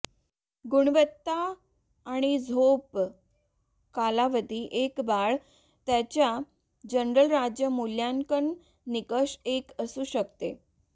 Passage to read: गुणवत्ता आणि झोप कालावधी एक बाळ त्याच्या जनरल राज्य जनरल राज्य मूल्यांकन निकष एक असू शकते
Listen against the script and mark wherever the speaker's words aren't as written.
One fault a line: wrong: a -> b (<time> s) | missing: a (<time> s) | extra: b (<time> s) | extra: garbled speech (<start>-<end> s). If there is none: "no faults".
missing: जनरल राज्य (7.7 s)